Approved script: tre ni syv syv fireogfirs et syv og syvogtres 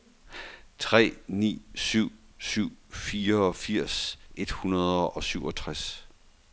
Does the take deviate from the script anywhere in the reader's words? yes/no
yes